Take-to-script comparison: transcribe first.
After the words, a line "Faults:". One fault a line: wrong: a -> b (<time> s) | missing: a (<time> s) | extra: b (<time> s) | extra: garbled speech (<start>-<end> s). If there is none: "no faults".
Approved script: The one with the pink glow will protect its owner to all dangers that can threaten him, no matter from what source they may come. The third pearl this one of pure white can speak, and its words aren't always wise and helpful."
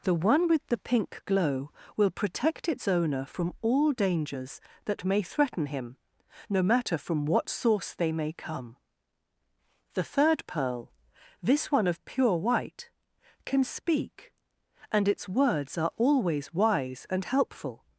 The one with the pink glow will protect its owner from all dangers that may threaten him, no matter from what source they may come. The third pearl this one of pure white can speak, and its words are always wise and helpful."
Faults:
wrong: to -> from (3.2 s)
wrong: can -> may (5.0 s)
wrong: aren't -> are (15.8 s)